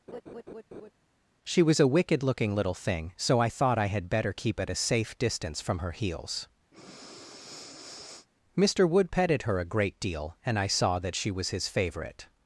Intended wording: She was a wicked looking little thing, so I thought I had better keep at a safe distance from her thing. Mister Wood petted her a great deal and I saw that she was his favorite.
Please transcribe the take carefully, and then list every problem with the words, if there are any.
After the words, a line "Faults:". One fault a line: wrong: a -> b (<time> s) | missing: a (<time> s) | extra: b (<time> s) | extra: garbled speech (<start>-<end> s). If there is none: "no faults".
She was a wicked looking little thing, so I thought I had better keep at a safe distance from her heels. Mister Wood petted her a great deal and I saw that she was his favorite.
Faults:
wrong: thing -> heels (5.9 s)